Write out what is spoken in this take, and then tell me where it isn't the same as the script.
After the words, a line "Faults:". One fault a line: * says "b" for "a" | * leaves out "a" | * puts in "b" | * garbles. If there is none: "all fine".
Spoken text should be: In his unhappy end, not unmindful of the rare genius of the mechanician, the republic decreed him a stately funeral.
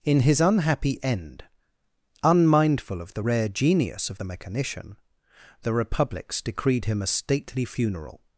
In his unhappy end, unmindful of the rare genius of the mechanician, the republics decreed him a stately funeral.
Faults:
* leaves out "not"
* says "republics" for "republic"